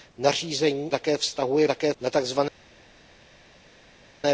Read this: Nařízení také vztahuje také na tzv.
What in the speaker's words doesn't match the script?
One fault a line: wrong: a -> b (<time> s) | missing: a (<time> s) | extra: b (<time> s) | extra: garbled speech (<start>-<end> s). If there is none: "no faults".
no faults